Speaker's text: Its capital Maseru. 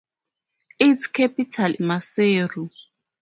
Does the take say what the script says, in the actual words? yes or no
yes